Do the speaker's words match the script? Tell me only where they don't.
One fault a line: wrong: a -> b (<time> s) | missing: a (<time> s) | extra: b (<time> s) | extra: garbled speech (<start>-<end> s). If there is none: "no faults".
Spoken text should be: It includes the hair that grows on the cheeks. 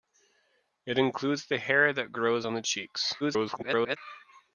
extra: garbled speech (3.2-4.0 s)